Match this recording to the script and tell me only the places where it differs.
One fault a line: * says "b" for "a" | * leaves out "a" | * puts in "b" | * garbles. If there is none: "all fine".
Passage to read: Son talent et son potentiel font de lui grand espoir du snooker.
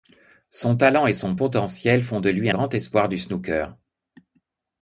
all fine